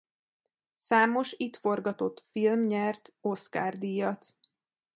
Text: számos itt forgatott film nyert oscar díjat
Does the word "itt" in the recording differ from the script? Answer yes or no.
no